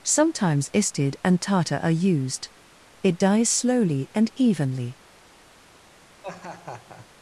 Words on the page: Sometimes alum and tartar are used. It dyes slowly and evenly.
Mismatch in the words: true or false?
true